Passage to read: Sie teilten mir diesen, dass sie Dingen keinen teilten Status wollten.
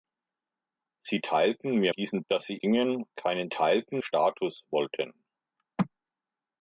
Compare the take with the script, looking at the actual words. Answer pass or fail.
pass